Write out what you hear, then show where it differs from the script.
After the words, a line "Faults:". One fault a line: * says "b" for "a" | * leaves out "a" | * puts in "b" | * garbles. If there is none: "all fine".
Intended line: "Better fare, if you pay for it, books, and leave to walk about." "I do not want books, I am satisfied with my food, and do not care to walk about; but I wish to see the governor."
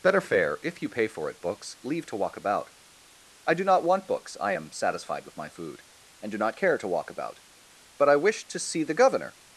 "Better fare, if you pay for it, books, leave to walk about." "I do not want books, I am satisfied with my food, and do not care to walk about; but I wish to see the governor."
Faults:
* leaves out "and"